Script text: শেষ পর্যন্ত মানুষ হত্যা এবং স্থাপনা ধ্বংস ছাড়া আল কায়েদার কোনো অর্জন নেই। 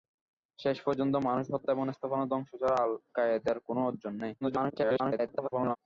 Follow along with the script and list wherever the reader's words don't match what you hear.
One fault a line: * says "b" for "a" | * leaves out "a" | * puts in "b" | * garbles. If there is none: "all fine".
* garbles